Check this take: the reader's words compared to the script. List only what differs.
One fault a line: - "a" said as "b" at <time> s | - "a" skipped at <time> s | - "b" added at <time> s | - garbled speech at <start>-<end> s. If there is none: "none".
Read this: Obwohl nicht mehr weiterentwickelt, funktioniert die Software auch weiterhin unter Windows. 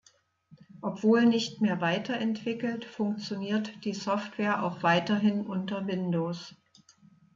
none